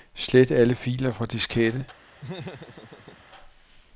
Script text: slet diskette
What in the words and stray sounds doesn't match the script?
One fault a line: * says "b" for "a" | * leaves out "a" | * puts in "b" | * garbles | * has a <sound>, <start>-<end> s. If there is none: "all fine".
* puts in "alle filer fra"
* has a laugh, 2.2-3.2 s